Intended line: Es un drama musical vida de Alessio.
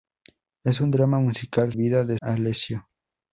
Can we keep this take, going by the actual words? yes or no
yes